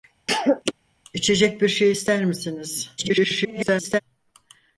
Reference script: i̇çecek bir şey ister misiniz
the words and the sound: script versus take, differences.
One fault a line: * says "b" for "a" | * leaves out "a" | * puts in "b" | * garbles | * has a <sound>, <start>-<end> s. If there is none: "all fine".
* has a cough, 0.3-0.7 s
* garbles